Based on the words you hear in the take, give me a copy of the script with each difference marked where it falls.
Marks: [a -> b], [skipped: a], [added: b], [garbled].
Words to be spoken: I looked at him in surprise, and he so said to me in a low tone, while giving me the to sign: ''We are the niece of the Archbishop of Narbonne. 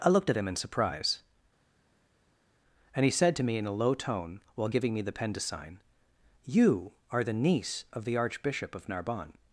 I looked at him in surprise, and he [skipped: so] said to me in a low tone, while giving me the [added: pen] to sign: [''We -> You] are the niece of the Archbishop of Narbonne.